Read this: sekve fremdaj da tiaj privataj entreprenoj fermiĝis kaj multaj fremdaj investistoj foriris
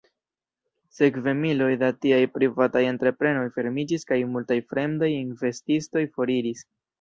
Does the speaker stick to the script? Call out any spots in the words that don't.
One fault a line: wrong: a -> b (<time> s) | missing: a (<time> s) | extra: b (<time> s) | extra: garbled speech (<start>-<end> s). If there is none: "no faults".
wrong: fremdaj -> miloj (1.4 s)